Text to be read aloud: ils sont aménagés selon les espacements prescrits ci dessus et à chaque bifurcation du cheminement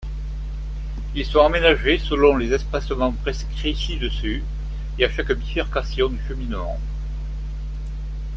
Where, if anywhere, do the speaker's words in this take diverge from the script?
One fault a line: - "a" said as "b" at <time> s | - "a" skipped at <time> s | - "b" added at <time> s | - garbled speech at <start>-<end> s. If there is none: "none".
none